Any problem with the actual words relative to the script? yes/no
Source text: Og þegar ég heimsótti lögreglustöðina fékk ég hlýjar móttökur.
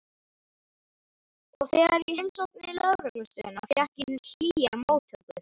no